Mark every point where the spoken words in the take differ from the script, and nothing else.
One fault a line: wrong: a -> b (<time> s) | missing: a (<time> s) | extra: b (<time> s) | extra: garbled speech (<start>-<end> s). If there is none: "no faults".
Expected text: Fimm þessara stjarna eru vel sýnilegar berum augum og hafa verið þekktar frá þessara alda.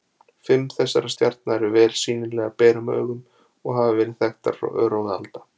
wrong: þessara -> örófi (4.9 s)